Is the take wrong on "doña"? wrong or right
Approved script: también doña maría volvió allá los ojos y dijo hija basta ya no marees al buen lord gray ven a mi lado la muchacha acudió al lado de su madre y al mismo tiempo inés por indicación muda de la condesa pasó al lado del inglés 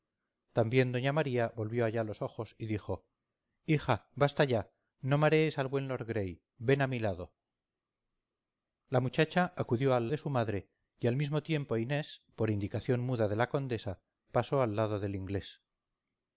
right